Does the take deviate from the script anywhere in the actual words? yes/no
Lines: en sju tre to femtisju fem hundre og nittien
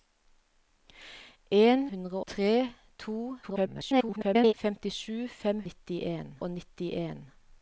yes